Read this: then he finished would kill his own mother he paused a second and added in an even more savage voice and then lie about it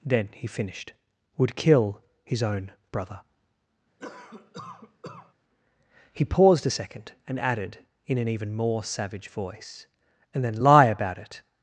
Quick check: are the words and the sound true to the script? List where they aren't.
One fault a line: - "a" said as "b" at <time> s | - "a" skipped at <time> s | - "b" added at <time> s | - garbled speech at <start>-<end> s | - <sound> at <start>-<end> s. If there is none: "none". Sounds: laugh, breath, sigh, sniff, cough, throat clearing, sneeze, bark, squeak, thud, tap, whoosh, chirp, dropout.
- "mother" said as "brother" at 2.9 s
- cough at 4.0-5.3 s